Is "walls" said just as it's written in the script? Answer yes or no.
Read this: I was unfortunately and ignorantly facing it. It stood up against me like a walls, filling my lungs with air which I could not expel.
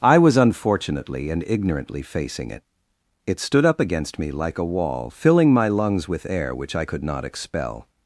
no